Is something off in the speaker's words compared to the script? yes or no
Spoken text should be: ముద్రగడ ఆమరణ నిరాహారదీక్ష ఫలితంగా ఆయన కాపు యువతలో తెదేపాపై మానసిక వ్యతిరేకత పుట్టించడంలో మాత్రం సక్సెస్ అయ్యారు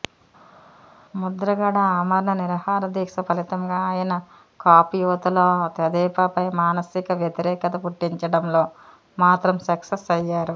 no